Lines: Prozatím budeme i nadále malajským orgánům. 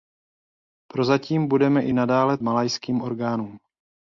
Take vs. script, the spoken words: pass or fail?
pass